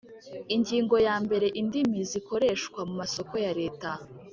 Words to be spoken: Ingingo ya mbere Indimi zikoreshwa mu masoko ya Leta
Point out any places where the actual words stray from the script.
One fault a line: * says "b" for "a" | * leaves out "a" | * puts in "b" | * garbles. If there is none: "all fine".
all fine